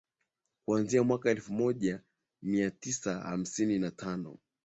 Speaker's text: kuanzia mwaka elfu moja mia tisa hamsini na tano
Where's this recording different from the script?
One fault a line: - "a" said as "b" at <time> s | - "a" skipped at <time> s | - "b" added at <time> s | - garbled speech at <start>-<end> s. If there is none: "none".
none